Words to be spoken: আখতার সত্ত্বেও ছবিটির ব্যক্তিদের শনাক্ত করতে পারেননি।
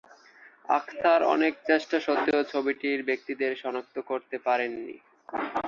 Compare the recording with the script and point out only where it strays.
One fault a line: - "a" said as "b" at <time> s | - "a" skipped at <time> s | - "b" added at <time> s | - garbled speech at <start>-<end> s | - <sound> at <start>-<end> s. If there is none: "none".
- "অনেক চেষ্টা" added at 1.3 s